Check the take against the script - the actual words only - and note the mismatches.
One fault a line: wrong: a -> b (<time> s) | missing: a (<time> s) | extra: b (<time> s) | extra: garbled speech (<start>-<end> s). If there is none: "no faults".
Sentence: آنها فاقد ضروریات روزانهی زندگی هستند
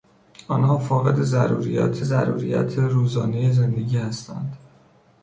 extra: ضروریات (2.0 s)